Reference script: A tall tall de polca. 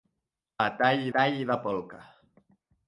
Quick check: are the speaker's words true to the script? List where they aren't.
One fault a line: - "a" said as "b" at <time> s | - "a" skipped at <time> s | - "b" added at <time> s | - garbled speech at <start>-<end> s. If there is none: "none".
none